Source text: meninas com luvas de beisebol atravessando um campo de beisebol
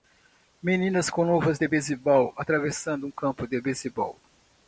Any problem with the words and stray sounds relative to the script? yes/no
no